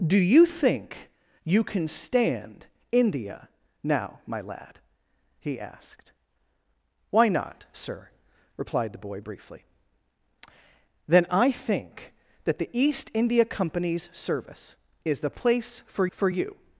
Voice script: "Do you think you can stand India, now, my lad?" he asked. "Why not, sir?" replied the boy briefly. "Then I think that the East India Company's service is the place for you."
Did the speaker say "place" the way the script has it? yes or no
yes